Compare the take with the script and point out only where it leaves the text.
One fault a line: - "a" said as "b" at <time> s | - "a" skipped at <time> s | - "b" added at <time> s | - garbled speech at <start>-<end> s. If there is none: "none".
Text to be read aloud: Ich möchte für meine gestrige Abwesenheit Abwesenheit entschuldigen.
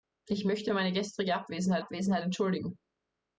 none